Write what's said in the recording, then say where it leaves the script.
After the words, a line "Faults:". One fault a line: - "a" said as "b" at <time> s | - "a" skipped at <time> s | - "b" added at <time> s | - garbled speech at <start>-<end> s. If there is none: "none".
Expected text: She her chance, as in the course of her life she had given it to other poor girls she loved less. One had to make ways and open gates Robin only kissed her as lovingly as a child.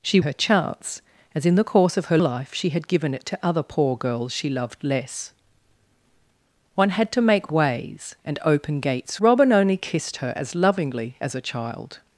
She her chance, as in the course of her life she had given it to other poor girls she loved less. One had to make ways and open gates Robin only kissed her as lovingly as a child.
Faults:
none